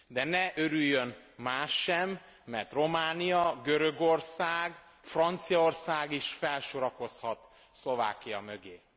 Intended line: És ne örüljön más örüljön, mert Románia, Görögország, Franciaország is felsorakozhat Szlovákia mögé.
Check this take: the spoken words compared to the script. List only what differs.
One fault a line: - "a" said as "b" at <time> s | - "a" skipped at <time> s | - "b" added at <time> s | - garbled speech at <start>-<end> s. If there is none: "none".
- "És" said as "De" at 0.1 s
- "örüljön" said as "sem" at 1.8 s